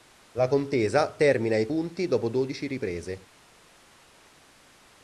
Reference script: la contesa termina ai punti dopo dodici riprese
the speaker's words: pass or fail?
pass